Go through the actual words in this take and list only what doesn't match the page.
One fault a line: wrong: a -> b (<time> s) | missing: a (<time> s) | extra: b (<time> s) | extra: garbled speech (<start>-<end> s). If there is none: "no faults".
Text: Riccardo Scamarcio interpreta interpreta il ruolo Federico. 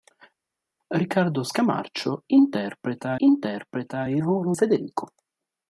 no faults